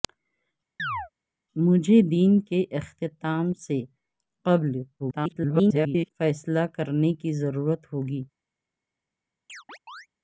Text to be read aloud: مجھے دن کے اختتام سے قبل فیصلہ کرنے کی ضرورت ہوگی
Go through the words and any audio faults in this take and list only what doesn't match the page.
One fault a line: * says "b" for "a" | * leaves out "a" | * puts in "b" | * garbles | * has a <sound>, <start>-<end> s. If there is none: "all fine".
* has a chirp, 0.8-1.1 s
* garbles
* has a chirp, 9.5-10.1 s